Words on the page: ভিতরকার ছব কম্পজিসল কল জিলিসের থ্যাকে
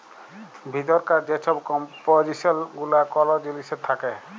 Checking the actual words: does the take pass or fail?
fail